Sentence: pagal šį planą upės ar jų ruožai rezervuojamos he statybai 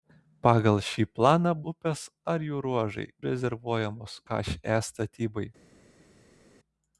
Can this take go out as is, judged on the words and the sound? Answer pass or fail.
pass